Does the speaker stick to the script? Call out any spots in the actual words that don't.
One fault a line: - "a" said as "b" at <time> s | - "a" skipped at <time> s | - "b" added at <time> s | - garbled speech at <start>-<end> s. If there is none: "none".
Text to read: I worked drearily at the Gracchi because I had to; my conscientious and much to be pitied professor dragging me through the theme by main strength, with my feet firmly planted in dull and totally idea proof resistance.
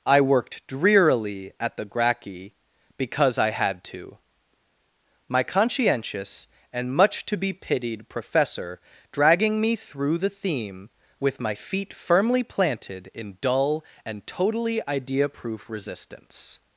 - "by main strength" skipped at 10.9 s